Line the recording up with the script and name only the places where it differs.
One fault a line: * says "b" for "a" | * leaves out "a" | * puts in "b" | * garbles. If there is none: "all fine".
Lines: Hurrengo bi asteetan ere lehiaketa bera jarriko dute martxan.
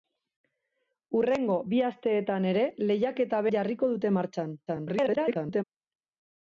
* leaves out "bera"
* garbles